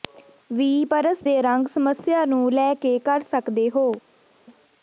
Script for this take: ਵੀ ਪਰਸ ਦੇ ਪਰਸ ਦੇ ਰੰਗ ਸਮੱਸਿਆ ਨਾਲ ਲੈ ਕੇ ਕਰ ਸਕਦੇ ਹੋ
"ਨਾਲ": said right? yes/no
no